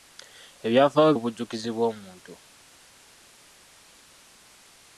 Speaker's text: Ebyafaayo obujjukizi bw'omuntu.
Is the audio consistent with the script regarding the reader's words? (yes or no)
yes